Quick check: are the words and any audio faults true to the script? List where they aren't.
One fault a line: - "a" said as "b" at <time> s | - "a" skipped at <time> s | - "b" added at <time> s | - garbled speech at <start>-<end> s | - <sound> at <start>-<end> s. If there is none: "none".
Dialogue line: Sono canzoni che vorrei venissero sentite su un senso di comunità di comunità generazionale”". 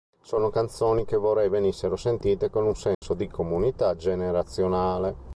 - "su" said as "con" at 2.5 s
- dropout at 2.9-3.0 s
- "di comunità" skipped at 4.0 s